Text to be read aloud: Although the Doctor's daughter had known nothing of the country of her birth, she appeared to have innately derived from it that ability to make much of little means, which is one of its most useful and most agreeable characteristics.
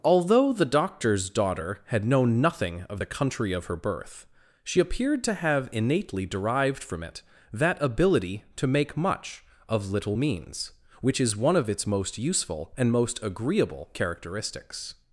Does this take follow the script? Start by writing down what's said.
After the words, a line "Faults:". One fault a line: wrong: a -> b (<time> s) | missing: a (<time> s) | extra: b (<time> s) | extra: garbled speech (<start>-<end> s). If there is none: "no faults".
Although the Doctor's daughter had known nothing of the country of her birth, she appeared to have innately derived from it that ability to make much of little means, which is one of its most useful and most agreeable characteristics.
Faults:
no faults